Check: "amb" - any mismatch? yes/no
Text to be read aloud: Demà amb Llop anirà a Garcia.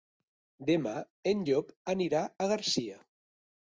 yes